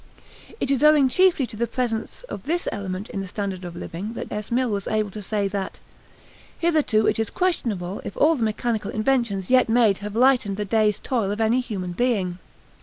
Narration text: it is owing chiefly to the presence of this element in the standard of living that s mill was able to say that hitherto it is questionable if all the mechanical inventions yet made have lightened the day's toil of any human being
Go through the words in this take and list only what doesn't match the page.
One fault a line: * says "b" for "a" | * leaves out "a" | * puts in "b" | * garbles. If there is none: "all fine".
all fine